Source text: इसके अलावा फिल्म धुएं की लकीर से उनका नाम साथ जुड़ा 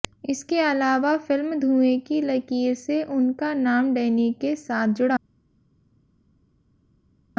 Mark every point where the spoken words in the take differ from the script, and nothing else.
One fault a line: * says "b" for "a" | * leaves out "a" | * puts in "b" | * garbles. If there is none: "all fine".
* puts in "डैनी के"